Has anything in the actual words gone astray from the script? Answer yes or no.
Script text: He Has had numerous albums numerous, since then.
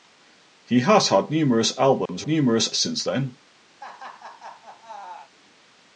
no